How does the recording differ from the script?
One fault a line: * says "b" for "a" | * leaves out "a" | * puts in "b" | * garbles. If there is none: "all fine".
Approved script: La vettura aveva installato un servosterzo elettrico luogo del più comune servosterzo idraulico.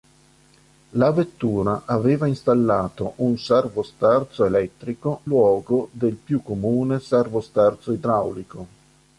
all fine